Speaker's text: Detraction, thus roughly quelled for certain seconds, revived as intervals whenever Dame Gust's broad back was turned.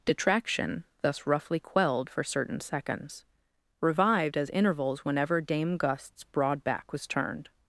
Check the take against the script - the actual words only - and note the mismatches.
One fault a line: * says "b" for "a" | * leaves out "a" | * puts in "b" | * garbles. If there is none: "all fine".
all fine